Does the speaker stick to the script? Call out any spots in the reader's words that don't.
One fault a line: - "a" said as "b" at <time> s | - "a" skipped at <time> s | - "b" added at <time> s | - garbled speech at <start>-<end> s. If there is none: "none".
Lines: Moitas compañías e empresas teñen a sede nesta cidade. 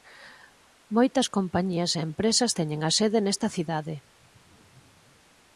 none